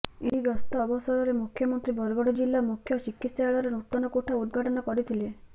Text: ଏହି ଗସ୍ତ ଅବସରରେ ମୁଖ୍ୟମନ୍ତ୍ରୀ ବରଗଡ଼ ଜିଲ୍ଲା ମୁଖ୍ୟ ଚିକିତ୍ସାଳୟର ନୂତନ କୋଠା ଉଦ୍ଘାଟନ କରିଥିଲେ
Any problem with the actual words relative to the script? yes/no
no